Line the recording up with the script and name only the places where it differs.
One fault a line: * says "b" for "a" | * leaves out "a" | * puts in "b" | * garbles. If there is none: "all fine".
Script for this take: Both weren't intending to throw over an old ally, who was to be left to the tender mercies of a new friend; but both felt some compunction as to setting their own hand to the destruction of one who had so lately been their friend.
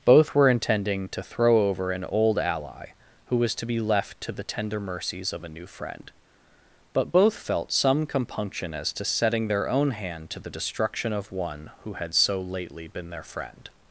* says "were" for "weren't"